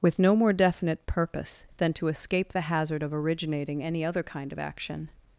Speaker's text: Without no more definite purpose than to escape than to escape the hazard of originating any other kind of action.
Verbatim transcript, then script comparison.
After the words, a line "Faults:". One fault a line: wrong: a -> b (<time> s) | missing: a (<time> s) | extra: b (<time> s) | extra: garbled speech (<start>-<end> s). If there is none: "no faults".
With no more definite purpose than to escape the hazard of originating any other kind of action.
Faults:
wrong: Without -> With (0.0 s)
missing: than to escape (2.5 s)